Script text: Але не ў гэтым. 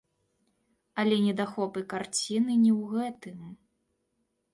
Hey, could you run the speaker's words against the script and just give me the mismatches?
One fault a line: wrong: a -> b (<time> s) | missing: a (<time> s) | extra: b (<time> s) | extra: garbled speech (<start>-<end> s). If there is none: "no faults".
extra: недахопы карціны (1.2 s)